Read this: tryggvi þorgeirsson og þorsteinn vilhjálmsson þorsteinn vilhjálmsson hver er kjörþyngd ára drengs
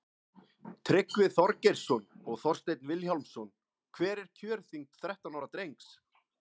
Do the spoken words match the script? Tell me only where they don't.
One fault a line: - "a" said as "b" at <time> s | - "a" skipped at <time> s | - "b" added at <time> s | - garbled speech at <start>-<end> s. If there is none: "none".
- "þorsteinn vilhjálmsson" skipped at 3.5 s
- "þrettán" added at 5.0 s